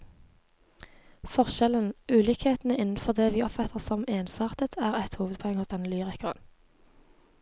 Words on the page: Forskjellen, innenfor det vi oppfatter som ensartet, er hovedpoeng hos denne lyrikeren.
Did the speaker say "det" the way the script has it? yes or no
yes